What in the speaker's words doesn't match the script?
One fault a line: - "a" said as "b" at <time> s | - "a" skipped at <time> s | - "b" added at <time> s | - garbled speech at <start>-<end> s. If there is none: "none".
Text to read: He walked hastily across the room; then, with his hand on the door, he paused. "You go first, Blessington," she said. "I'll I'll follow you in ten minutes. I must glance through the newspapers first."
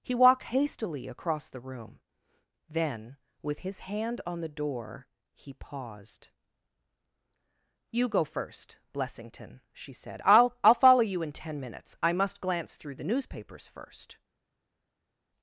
none